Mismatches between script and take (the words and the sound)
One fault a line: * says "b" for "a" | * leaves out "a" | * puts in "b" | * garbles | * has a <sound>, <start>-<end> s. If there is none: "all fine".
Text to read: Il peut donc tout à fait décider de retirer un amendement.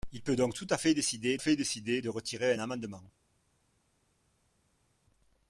* puts in "fait décider"